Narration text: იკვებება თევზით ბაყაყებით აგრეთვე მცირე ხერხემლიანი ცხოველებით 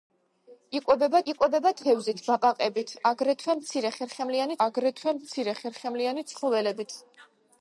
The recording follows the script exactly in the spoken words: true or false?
false